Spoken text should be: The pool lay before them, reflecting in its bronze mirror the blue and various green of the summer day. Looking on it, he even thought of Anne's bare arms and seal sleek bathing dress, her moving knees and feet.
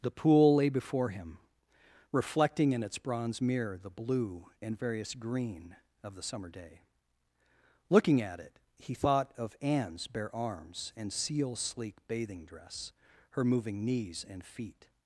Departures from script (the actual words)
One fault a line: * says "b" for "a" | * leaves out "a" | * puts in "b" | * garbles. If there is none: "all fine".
* says "him" for "them"
* says "at" for "on"
* leaves out "even"